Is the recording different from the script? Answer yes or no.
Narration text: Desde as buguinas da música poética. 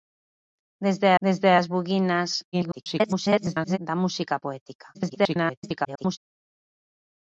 yes